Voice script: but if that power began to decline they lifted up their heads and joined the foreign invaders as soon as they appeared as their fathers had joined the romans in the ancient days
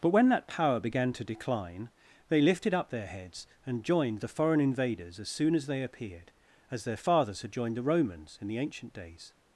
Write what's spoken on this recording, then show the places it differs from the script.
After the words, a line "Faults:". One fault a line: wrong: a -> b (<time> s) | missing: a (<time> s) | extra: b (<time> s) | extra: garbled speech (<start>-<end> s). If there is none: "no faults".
but when that power began to decline they lifted up their heads and joined the foreign invaders as soon as they appeared as their fathers had joined the romans in the ancient days
Faults:
wrong: if -> when (0.1 s)